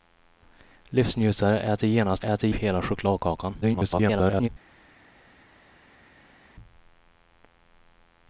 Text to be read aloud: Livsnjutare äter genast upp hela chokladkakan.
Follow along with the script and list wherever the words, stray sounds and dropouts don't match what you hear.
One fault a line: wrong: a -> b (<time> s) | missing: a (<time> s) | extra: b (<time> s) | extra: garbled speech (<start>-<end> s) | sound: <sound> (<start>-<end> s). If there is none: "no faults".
wrong: upp -> äter (2.2 s)
extra: garbled speech (3.6-4.5 s)